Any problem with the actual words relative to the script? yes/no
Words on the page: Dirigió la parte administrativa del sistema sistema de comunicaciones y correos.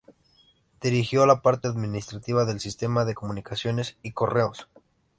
yes